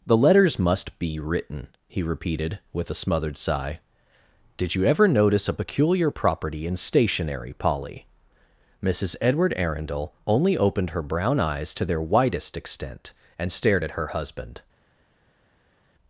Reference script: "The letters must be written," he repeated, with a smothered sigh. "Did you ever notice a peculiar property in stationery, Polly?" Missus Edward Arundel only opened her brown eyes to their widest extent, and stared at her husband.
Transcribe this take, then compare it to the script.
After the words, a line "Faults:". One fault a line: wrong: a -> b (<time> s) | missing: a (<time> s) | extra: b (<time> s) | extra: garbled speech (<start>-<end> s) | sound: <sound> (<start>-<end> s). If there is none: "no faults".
"The letters must be written," he repeated, with a smothered sigh. "Did you ever notice a peculiar property in stationery, Polly?" Missus Edward Arundel only opened her brown eyes to their widest extent, and stared at her husband.
Faults:
no faults